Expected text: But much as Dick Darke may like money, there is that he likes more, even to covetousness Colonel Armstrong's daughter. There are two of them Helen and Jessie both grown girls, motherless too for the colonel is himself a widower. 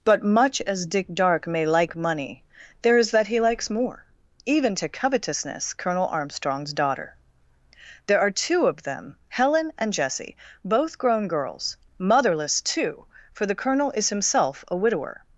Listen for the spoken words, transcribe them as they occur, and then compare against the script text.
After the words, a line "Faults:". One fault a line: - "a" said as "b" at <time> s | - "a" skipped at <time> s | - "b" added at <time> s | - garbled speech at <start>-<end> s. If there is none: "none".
But much as Dick Darke may like money, there is that he likes more, even to covetousness Colonel Armstrong's daughter. There are two of them Helen and Jessie both grown girls, motherless too for the colonel is himself a widower.
Faults:
none